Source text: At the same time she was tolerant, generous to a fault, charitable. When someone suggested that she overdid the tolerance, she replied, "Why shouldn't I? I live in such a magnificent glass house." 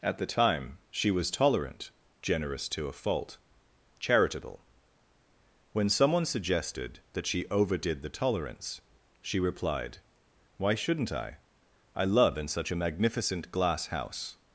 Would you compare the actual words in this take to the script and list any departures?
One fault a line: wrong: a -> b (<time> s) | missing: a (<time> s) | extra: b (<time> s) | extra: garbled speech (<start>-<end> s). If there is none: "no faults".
missing: same (0.2 s)
wrong: live -> love (12.0 s)